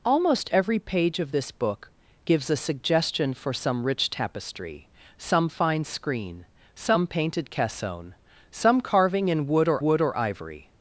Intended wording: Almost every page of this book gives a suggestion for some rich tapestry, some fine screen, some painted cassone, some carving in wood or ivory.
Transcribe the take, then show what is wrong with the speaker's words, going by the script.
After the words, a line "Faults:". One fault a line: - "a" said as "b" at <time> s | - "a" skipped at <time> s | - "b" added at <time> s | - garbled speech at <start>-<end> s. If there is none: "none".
Almost every page of this book gives a suggestion for some rich tapestry, some fine screen, some painted cassone, some carving in wood or wood or ivory.
Faults:
- "wood or" added at 9.8 s